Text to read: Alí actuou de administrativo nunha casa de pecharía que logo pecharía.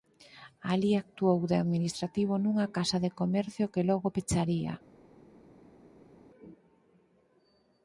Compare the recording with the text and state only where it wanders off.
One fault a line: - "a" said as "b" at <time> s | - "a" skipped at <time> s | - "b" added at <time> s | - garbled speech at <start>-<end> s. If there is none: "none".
- "pecharía" said as "comercio" at 3.2 s